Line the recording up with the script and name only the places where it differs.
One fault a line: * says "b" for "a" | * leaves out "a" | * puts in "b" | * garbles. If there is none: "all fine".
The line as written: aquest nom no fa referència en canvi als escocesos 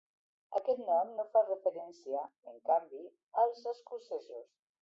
all fine